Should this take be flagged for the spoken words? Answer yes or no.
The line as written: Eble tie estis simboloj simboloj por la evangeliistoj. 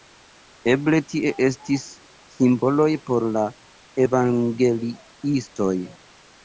yes